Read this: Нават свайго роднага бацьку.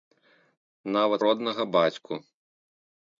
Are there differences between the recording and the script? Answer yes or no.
yes